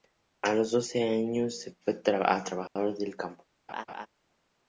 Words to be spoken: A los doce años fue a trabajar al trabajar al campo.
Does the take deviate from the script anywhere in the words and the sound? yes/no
yes